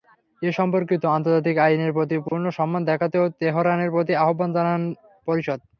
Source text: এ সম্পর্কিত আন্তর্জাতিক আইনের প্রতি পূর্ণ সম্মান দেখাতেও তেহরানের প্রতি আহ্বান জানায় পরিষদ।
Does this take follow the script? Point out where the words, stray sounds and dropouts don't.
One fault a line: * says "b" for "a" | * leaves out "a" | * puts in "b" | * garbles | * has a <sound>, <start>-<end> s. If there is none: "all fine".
* has a dropout, 2.3-2.3 s